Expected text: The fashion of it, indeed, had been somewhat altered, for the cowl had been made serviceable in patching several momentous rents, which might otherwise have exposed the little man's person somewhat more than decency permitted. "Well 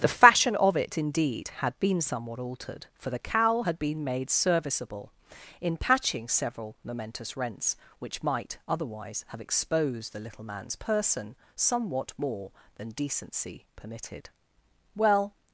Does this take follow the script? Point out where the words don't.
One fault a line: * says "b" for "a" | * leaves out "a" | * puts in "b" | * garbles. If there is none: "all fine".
all fine